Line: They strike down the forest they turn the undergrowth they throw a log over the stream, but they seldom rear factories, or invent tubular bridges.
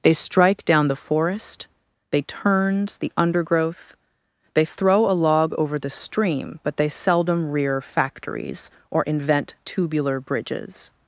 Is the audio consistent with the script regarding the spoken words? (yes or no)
no